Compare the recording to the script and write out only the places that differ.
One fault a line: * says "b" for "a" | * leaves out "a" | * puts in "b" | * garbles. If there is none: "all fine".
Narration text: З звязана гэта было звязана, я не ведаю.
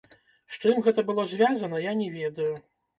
* says "чым" for "звязана"